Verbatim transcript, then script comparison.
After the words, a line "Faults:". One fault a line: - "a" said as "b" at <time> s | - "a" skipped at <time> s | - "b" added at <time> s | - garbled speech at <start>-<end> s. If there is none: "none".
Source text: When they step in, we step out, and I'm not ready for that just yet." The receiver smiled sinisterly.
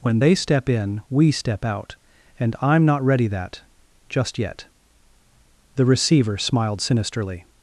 When they step in, we step out, and I'm not ready that just yet." The receiver smiled sinisterly.
Faults:
- "for" skipped at 3.3 s